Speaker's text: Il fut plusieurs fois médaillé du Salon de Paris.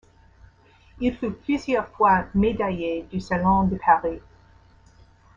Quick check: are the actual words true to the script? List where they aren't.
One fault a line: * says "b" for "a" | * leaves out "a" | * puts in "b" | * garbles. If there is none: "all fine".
all fine